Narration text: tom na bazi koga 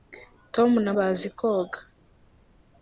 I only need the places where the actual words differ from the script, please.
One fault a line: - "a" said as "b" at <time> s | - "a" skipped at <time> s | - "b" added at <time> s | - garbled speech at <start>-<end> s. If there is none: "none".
none